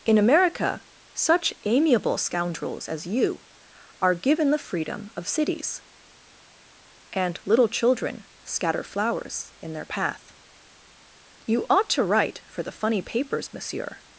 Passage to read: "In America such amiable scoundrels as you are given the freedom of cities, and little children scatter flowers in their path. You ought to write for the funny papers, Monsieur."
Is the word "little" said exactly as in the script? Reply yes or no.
yes